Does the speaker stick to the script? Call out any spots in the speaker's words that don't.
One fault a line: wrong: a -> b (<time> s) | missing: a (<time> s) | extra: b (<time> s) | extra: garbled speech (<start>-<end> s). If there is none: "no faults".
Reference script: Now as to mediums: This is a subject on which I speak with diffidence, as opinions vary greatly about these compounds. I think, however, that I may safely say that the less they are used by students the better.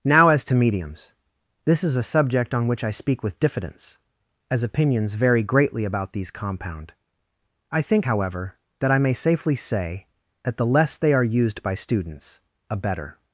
wrong: compounds -> compound (6.3 s)
wrong: the -> a (12.7 s)